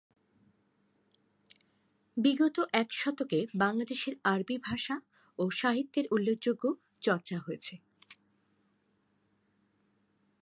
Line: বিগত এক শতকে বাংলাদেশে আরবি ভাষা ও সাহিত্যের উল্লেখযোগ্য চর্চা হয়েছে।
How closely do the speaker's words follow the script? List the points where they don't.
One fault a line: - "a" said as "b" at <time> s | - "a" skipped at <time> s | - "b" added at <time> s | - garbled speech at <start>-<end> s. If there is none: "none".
none